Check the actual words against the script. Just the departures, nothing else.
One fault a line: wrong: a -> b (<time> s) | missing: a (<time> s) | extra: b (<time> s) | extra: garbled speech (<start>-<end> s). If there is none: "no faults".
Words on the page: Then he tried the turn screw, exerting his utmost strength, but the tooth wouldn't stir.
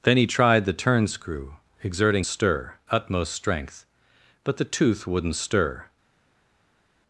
wrong: his -> stir (2.2 s)